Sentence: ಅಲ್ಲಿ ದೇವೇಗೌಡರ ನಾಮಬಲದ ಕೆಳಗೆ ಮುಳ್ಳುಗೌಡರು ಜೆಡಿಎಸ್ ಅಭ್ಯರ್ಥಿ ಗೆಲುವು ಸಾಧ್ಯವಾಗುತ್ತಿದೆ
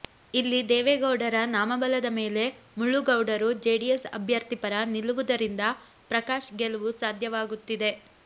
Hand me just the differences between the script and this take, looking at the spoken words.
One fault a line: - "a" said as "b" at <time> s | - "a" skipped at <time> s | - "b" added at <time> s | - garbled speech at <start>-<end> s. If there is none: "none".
- "ಅಲ್ಲಿ" said as "ಇಲ್ಲಿ" at 0.3 s
- "ಕೆಳಗೆ" said as "ಮೇಲೆ" at 2.1 s
- "ಪರ ನಿಲ್ಲುವುದರಿಂದ ಪ್ರಕಾಶ್" added at 4.6 s